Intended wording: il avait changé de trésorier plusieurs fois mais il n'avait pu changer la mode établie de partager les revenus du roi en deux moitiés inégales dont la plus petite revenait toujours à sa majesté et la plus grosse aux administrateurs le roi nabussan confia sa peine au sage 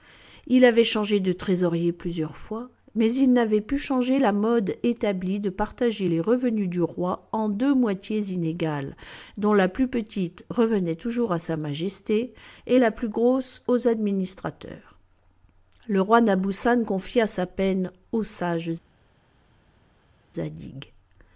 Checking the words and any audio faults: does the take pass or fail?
pass